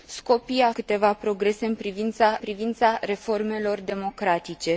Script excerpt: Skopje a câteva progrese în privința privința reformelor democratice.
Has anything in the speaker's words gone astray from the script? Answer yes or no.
no